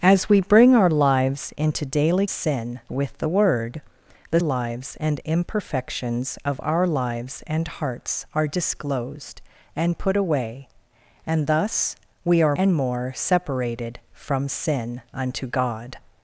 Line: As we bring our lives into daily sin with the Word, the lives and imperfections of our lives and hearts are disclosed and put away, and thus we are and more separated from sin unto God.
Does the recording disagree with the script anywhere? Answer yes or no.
no